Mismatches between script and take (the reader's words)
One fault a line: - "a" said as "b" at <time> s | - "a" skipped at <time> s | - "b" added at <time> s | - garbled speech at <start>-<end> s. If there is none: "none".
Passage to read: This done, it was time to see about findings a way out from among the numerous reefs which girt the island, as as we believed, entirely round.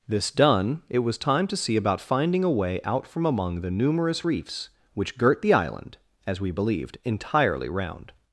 - "findings" said as "finding" at 2.0 s
- "as" skipped at 6.4 s